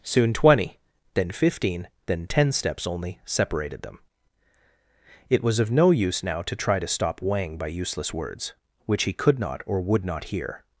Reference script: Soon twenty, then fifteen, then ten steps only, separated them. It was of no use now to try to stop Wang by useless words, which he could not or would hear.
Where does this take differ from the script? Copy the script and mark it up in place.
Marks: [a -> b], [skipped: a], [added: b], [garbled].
Soon twenty, then fifteen, then ten steps only, separated them. It was of no use now to try to stop Wang by useless words, which he could not or would [added: not] hear.